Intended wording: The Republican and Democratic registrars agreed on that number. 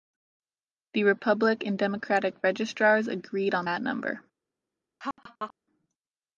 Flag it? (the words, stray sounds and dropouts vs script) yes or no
yes